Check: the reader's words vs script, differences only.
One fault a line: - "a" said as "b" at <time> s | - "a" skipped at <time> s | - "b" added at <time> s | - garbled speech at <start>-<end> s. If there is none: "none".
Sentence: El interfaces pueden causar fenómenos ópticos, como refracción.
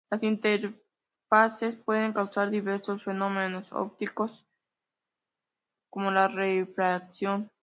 - "El" said as "Las" at 0.1 s
- "diversos" added at 2.5 s
- "la" added at 6.1 s